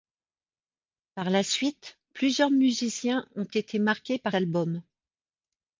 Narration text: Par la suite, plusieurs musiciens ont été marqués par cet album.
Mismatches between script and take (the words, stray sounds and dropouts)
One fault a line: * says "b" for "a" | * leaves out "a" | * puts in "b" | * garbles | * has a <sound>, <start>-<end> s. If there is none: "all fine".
* leaves out "cet"